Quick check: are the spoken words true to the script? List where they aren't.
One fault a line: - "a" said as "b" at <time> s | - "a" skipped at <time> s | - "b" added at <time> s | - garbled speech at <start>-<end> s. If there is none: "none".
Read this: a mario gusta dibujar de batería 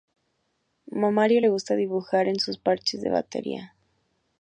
- "le" added at 1.4 s
- "en sus parches" added at 2.3 s